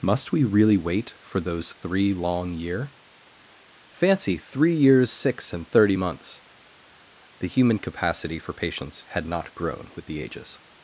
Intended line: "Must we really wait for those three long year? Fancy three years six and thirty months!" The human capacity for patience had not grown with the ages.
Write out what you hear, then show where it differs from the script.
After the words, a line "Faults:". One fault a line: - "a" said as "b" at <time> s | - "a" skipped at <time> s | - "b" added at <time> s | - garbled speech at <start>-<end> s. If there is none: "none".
"Must we really wait for those three long year? Fancy three years six and thirty months!" The human capacity for patience had not grown with the ages.
Faults:
none